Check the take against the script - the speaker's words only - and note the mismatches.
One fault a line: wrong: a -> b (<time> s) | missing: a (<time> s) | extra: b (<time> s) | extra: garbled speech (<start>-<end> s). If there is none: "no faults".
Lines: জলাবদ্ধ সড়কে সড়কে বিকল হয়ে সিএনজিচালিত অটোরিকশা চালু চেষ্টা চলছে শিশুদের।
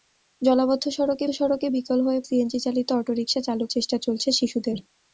no faults